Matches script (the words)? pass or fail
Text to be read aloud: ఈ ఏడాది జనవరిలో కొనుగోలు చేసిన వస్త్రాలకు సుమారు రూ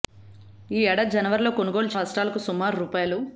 fail